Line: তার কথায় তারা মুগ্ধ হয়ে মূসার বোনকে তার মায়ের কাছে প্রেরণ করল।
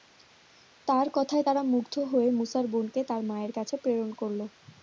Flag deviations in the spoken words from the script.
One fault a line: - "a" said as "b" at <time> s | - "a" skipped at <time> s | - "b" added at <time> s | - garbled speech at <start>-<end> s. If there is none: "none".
none